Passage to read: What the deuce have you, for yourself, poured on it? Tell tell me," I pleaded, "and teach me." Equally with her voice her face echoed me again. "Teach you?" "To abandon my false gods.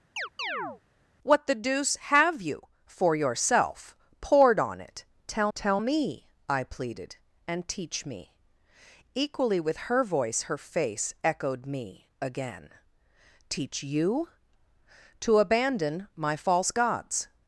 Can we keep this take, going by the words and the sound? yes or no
no